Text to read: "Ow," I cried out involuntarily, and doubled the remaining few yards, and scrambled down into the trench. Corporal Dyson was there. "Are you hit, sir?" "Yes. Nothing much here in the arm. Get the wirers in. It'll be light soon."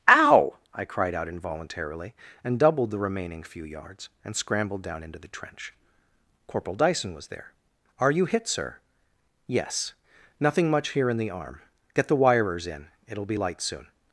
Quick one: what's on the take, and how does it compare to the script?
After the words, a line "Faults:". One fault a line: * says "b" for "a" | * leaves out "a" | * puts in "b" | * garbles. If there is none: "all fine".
"Ow," I cried out involuntarily, and doubled the remaining few yards, and scrambled down into the trench. Corporal Dyson was there. "Are you hit, sir?" "Yes. Nothing much here in the arm. Get the wirers in. It'll be light soon."
Faults:
all fine